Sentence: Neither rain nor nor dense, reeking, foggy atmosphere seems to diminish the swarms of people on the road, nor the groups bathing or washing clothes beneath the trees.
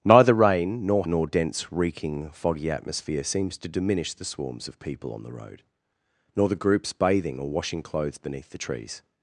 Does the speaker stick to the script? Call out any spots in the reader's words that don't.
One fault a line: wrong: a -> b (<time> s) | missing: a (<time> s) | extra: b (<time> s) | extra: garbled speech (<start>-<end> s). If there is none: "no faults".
no faults